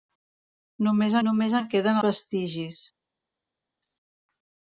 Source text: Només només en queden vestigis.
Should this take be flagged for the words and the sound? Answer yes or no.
no